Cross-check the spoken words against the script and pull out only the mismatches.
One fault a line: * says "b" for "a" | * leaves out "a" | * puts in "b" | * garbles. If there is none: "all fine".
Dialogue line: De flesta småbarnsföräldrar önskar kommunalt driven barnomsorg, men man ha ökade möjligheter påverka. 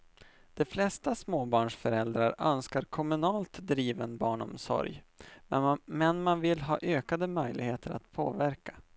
* puts in "vill"
* puts in "att"